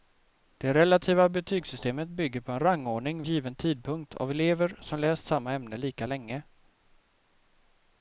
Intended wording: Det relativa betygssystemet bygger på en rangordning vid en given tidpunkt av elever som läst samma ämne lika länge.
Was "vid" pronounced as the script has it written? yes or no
no